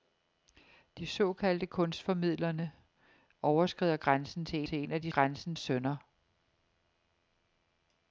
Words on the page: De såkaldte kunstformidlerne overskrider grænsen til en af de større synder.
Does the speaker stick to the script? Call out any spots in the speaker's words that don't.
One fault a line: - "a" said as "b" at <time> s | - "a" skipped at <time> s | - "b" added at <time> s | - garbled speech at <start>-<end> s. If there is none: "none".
- "til" added at 4.6 s
- "større" said as "grænsen" at 5.1 s